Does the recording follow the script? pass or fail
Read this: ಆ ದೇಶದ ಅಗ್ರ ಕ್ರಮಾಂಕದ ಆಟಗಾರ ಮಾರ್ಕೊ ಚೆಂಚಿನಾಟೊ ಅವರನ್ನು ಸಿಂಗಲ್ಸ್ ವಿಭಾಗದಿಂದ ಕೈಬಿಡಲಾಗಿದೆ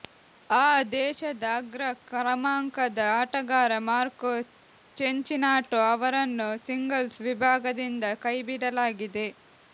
pass